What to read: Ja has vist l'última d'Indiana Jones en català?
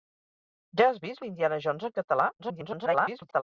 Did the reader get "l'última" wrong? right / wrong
wrong